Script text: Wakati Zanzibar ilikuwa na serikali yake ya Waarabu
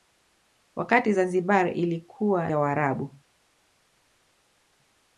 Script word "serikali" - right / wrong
wrong